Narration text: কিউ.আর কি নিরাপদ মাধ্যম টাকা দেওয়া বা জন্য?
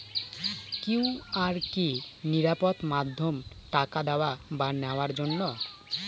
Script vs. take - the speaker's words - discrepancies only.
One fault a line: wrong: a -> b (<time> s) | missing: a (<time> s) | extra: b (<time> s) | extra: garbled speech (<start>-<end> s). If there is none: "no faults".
extra: নেওয়ার (4.8 s)